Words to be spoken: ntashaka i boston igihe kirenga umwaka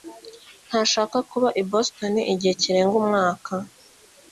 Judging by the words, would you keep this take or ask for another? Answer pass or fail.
fail